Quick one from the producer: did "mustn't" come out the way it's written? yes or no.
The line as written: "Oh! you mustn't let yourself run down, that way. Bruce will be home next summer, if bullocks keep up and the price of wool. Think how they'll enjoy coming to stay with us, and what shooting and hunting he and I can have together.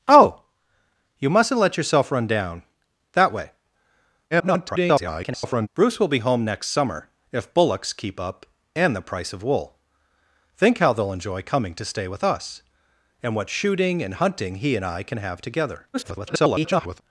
yes